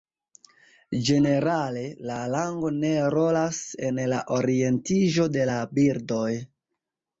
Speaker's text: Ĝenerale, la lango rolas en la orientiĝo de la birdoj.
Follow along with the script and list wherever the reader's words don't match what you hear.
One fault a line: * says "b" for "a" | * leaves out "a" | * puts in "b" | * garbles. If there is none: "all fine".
* puts in "ne"